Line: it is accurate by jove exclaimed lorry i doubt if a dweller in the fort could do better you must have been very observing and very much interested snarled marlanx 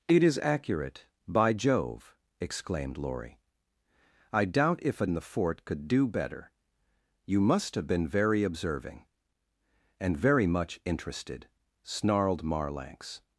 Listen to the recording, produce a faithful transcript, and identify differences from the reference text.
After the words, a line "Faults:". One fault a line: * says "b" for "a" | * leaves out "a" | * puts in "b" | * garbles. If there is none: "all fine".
it is accurate by jove exclaimed lorry i doubt if a in the fort could do better you must have been very observing and very much interested snarled marlanx
Faults:
* leaves out "dweller"